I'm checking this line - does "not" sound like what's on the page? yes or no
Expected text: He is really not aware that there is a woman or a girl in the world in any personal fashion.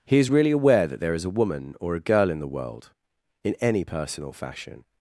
no